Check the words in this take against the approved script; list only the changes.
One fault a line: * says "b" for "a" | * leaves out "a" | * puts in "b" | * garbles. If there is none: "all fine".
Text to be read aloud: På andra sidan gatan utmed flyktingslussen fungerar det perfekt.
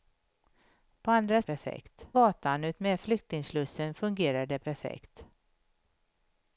* says "perfekt" for "sidan"